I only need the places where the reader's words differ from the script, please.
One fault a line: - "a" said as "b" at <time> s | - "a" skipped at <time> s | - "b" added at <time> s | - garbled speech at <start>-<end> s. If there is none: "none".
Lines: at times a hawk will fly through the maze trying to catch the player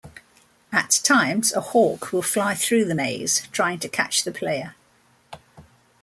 none